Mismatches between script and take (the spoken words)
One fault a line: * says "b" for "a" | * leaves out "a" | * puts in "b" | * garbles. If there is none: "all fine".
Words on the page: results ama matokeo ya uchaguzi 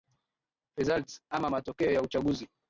all fine